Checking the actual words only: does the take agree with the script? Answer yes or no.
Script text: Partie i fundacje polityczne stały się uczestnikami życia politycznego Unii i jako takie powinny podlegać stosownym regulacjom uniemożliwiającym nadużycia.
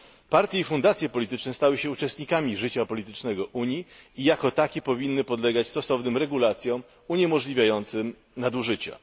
yes